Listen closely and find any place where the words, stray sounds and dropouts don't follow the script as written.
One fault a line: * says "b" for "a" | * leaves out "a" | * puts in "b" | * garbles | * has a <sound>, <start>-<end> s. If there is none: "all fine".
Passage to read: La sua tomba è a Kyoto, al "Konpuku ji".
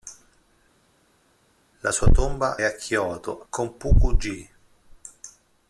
* leaves out "è"
* leaves out "al"